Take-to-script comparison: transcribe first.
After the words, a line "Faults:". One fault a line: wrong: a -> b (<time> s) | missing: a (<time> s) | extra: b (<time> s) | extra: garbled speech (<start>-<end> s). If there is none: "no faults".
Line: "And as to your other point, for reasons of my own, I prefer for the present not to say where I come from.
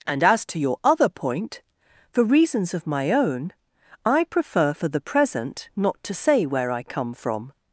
"And as to your other point, for reasons of my own, I prefer for the present not to say where I come from.
Faults:
no faults